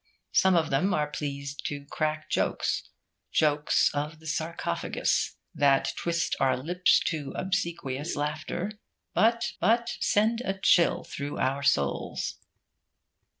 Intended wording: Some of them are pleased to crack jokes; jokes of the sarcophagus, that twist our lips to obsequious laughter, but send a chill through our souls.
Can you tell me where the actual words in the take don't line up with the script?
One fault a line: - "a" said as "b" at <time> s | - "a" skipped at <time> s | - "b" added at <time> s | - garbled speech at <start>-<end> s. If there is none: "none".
- "but" added at 9.6 s